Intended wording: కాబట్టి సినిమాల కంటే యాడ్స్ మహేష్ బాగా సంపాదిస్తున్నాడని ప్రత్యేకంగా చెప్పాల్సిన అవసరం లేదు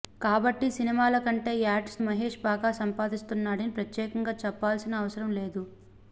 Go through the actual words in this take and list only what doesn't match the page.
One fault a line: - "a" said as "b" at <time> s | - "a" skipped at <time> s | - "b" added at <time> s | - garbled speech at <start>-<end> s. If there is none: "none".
none